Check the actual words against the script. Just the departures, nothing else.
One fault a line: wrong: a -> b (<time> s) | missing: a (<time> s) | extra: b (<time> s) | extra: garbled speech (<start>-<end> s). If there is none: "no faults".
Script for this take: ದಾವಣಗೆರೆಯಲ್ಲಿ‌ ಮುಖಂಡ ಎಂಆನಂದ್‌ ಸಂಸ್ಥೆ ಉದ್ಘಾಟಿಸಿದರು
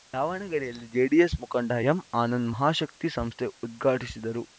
extra: ಜೆಡಿಎಸ್ (0.9 s)
extra: ಮಹಾಶಕ್ತಿ (2.5 s)